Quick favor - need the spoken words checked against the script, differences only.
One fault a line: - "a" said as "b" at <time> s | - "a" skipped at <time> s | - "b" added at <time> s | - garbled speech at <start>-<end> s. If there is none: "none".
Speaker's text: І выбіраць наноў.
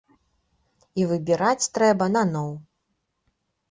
- "трэба" added at 1.8 s